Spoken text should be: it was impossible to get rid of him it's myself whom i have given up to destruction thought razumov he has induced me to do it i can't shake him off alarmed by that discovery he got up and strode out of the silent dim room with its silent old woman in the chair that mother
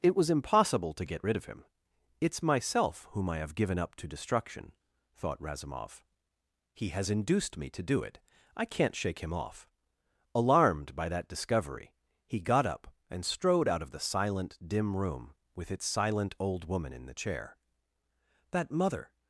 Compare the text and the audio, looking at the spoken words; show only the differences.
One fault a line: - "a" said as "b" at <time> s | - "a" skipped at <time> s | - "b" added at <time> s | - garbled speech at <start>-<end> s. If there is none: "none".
none